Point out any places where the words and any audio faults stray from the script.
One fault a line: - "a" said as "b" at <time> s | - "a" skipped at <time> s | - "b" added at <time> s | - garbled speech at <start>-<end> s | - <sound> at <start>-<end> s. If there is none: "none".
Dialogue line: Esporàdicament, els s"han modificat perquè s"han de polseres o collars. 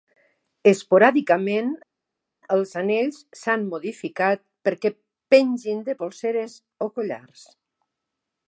- "anells" added at 2.8 s
- "s"han" said as "pengin" at 5.4 s